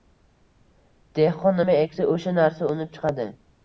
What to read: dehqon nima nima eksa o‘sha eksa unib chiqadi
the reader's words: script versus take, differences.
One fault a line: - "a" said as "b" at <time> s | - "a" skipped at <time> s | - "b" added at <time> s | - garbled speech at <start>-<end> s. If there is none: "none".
- "nima" skipped at 1.8 s
- "eksa" said as "narsa" at 2.4 s